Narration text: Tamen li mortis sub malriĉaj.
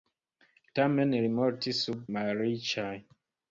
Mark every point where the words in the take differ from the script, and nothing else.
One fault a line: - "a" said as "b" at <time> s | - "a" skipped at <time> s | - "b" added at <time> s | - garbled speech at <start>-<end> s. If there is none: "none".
none